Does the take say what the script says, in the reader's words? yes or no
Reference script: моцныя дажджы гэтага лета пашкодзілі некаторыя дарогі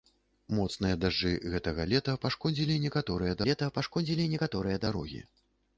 no